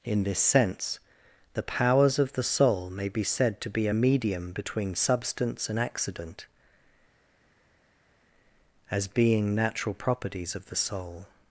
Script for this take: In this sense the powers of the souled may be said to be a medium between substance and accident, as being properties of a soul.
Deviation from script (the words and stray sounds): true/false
true